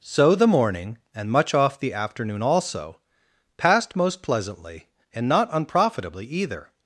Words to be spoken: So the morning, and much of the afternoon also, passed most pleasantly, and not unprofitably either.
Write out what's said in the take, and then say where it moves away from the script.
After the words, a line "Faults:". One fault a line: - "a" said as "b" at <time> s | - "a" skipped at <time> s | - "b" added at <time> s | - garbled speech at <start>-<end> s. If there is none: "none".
So the morning, and much off the afternoon also, passed most pleasantly, and not unprofitably either.
Faults:
- "of" said as "off" at 1.5 s